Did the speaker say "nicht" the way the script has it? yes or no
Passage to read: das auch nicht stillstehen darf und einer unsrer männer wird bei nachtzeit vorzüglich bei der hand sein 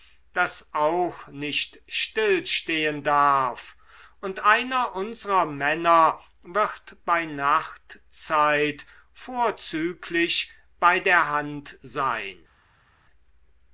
yes